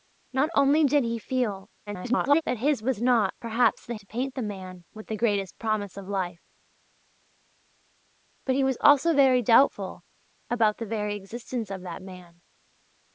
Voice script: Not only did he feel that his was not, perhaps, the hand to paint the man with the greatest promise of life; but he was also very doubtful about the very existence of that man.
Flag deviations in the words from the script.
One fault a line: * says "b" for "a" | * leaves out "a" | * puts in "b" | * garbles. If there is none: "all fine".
* garbles
* leaves out "hand"